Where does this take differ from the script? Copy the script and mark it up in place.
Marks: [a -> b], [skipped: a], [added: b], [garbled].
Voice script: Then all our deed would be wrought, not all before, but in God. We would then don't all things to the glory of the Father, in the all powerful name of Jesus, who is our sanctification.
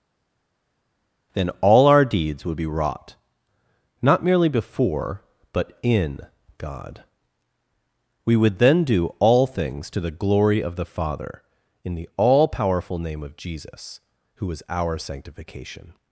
Then all our [deed -> deeds] would be wrought, not [all -> merely] before, but in God. We would then [don't -> do] all things to the glory of the Father, in the all powerful name of Jesus, who is our sanctification.